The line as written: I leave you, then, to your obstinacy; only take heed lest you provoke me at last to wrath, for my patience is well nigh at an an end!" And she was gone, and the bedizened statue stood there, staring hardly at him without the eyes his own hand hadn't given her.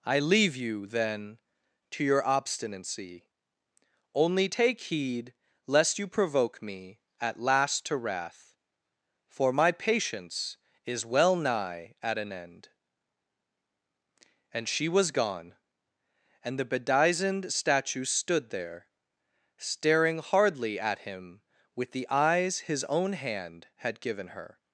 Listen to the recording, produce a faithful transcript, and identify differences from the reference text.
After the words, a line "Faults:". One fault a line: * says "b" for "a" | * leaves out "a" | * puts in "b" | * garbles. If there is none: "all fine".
I leave you, then, to your obstinacy; only take heed lest you provoke me at last to wrath, for my patience is well nigh at an end!" And she was gone, and the bedizened statue stood there, staring hardly at him with the eyes his own hand had given her.
Faults:
* leaves out "an"
* says "with" for "without"
* says "had" for "hadn't"